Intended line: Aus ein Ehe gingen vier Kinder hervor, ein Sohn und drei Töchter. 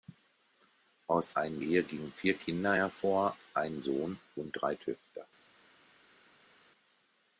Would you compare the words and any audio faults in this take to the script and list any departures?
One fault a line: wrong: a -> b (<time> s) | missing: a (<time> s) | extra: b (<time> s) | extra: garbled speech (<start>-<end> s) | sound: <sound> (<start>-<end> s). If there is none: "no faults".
no faults